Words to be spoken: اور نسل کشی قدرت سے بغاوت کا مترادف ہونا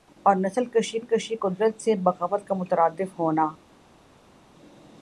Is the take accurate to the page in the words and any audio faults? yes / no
no